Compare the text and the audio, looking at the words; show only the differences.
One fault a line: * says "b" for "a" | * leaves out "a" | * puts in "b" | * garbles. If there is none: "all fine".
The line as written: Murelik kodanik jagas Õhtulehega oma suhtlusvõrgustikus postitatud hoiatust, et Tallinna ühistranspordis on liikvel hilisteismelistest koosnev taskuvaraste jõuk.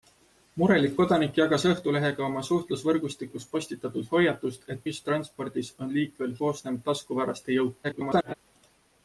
* leaves out "Tallinna"
* leaves out "hilisteismelistest"
* garbles